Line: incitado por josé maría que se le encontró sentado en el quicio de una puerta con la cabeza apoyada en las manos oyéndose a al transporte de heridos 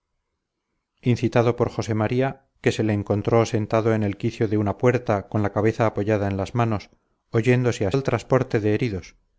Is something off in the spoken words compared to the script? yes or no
no